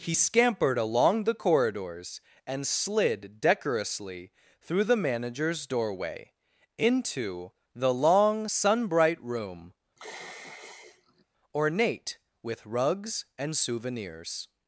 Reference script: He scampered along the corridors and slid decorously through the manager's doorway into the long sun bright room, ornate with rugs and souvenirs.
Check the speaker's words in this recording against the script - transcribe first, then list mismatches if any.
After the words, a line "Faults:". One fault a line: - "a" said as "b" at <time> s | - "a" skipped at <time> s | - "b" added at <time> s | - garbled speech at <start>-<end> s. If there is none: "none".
He scampered along the corridors and slid decorously through the manager's doorway into the long sun bright room, ornate with rugs and souvenirs.
Faults:
none